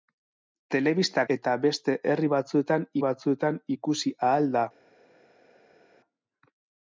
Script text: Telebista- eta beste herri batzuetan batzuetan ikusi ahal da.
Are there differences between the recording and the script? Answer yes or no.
no